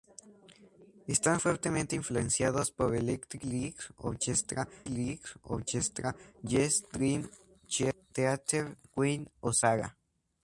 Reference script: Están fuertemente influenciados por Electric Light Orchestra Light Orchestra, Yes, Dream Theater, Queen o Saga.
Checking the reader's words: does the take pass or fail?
pass